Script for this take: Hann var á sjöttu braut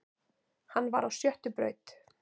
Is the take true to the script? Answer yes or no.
yes